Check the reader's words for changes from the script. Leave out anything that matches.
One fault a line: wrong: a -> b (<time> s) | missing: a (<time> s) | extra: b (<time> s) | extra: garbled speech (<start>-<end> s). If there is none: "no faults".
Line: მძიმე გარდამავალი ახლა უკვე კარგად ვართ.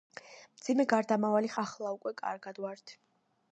no faults